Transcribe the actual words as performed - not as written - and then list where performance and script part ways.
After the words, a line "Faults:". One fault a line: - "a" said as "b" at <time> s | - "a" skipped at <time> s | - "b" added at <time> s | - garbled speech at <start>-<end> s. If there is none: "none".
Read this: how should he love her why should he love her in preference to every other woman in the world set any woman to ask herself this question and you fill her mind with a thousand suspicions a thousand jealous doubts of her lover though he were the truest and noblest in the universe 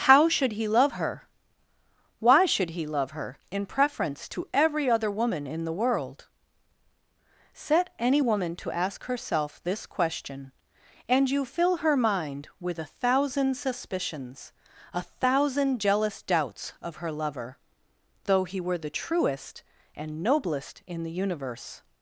how should he love her why should he love her in preference to every other woman in the world set any woman to ask herself this question and you fill her mind with a thousand suspicions a thousand jealous doubts of her lover though he were the truest and noblest in the universe
Faults:
none